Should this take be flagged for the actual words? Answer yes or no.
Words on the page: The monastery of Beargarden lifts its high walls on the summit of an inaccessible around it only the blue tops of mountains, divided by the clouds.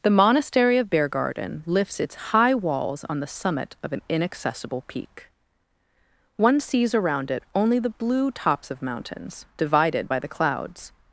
yes